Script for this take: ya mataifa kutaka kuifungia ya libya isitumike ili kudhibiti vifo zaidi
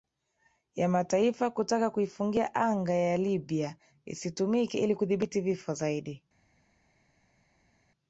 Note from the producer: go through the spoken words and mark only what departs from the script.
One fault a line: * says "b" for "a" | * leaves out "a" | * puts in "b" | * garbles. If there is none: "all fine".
* puts in "anga"